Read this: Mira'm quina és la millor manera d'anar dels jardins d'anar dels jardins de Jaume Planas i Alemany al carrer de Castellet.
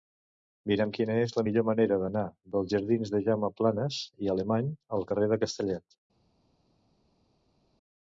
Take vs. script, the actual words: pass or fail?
fail